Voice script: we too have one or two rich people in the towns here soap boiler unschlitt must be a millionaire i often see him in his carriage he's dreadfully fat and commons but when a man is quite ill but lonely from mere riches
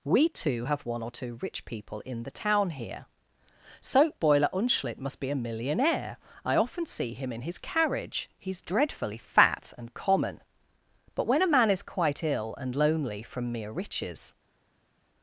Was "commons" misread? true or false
true